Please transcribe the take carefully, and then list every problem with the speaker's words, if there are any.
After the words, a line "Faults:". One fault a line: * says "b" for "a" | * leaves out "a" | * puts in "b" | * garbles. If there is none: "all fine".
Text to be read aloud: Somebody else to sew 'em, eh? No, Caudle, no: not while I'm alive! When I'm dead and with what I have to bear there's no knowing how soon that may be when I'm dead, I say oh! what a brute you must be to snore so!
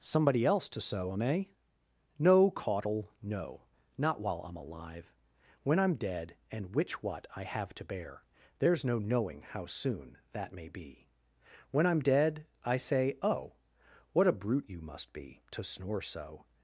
Somebody else to sew 'em, eh? No, Caudle, no: not while I'm alive! When I'm dead and which what I have to bear there's no knowing how soon that may be when I'm dead, I say oh! what a brute you must be to snore so!
Faults:
* says "which" for "with"